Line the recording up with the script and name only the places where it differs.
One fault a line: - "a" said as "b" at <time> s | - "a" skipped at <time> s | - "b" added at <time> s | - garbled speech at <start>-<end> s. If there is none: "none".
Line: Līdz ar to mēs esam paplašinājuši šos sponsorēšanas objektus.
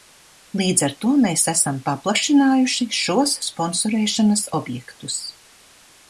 none